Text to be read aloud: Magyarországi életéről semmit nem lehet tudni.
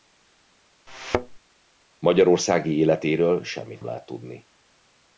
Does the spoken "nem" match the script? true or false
false